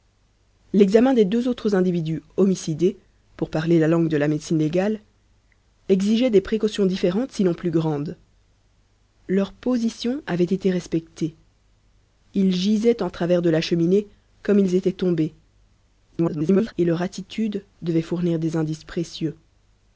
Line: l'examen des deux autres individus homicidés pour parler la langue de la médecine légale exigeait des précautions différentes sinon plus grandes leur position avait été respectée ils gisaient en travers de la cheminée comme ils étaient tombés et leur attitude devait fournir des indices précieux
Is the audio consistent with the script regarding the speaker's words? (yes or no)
no